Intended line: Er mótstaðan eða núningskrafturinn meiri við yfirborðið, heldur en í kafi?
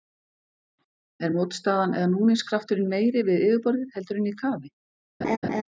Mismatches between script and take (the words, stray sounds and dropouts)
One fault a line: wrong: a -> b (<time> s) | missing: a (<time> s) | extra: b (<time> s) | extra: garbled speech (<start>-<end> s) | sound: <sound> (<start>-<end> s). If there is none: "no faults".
sound: laugh (5.2-5.6 s)